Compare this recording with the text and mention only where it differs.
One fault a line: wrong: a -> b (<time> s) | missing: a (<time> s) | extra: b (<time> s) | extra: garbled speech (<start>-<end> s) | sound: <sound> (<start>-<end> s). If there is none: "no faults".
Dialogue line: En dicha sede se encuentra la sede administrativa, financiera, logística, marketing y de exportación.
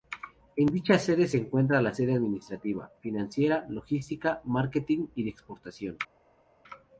no faults